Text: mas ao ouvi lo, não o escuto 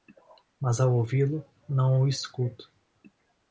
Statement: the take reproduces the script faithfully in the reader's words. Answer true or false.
true